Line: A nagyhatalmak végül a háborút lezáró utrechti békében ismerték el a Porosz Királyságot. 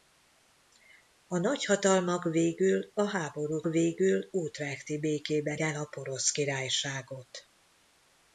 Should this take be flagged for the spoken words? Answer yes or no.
yes